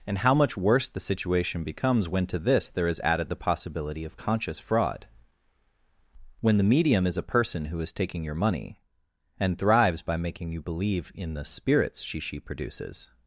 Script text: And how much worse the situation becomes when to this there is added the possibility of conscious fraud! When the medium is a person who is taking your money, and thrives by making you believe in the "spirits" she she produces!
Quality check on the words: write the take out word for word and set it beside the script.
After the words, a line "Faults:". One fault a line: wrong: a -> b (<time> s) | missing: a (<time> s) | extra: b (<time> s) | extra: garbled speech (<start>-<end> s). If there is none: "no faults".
And how much worse the situation becomes when to this there is added the possibility of conscious fraud! When the medium is a person who is taking your money, and thrives by making you believe in the "spirits" she she produces!
Faults:
no faults